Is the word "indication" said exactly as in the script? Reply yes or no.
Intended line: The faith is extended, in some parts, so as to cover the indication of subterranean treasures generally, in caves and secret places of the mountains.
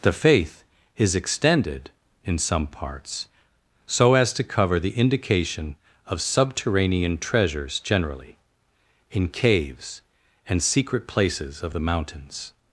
yes